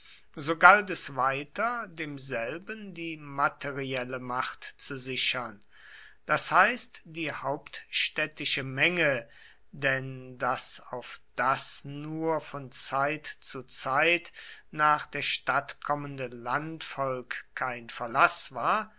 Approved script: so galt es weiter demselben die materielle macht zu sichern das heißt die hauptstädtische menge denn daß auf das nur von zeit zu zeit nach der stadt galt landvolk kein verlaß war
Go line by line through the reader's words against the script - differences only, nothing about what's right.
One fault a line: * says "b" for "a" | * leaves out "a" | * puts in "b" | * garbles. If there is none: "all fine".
* says "kommende" for "galt"